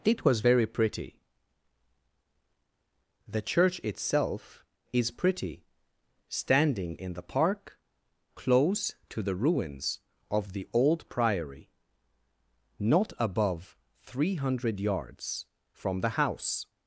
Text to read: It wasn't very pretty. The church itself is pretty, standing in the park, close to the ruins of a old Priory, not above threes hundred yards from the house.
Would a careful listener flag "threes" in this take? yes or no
yes